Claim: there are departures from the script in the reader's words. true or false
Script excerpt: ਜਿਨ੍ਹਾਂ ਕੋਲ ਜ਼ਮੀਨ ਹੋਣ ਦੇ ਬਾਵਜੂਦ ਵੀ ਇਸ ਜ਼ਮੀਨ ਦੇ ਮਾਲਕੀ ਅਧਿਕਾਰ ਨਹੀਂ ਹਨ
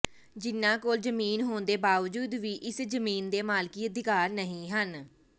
false